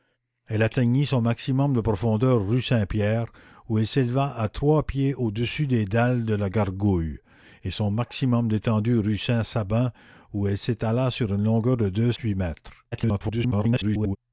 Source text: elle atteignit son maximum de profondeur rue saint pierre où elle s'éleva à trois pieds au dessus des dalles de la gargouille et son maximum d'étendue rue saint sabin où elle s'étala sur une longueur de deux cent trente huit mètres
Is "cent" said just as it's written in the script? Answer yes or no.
no